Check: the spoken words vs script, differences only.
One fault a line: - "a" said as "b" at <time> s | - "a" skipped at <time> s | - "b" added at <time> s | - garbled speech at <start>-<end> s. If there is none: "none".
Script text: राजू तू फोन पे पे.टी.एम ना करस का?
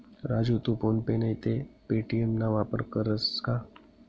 - "नैते" added at 1.2 s
- "वापर" added at 2.5 s